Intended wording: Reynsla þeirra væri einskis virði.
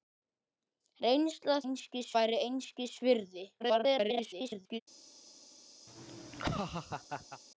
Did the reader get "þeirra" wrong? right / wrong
wrong